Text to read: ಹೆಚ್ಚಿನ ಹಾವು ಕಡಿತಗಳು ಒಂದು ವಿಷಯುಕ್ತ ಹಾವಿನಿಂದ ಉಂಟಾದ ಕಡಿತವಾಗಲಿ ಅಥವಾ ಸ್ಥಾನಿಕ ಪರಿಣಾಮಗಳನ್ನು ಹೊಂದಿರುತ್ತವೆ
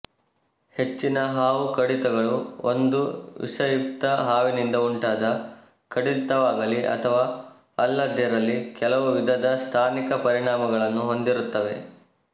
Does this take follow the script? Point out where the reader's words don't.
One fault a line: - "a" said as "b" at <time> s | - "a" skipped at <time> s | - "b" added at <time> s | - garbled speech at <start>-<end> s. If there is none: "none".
- "ಅಲ್ಲದಿರಲಿ ಕೆಲವು ವಿಧದ" added at 7.8 s